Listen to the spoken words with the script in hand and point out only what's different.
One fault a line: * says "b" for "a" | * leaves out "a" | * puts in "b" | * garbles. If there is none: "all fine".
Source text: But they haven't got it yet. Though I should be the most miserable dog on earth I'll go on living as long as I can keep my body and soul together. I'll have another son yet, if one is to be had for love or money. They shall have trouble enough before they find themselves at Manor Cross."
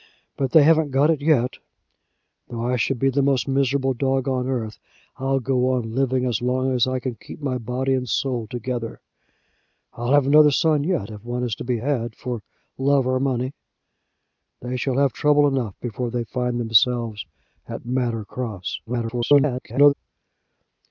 * garbles